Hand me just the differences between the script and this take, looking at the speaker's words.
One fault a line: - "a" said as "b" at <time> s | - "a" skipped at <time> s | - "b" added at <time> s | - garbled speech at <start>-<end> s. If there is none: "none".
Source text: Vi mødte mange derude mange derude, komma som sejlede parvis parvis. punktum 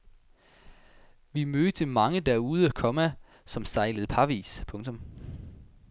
- "mange derude" skipped at 2.7 s
- "parvis" skipped at 4.6 s